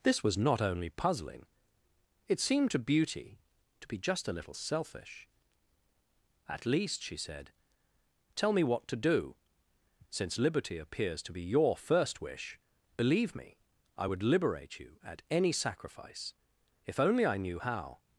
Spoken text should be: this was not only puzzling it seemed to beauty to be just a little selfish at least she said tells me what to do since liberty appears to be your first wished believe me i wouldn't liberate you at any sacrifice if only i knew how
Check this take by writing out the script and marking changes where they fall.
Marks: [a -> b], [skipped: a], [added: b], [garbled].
this was not only puzzling it seemed to beauty to be just a little selfish at least she said [tells -> tell] me what to do since liberty appears to be your first [wished -> wish] believe me i [wouldn't -> would] liberate you at any sacrifice if only i knew how